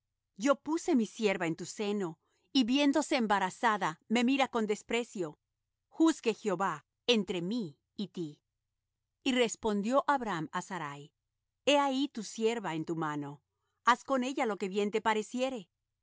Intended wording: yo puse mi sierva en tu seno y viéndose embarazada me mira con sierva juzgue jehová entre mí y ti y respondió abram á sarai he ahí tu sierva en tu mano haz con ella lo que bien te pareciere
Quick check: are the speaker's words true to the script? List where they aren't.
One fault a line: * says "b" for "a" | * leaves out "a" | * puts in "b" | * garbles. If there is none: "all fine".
* says "desprecio" for "sierva"